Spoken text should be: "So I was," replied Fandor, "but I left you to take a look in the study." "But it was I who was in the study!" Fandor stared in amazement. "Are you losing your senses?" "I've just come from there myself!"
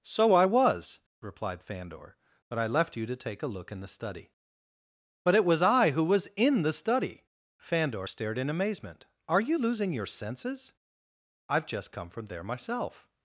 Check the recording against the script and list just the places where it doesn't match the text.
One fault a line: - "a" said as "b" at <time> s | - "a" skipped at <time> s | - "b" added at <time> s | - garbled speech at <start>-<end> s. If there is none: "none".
none